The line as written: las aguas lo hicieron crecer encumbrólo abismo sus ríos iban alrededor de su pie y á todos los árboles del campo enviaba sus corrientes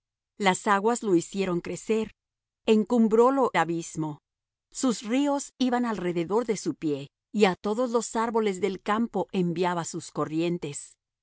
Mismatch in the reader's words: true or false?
false